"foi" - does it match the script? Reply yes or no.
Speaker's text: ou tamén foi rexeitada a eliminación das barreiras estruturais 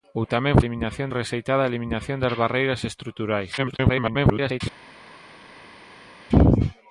no